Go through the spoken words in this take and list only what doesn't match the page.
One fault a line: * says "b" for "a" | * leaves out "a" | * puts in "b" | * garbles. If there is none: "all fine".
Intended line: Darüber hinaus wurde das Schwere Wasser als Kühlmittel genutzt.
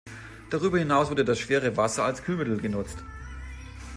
all fine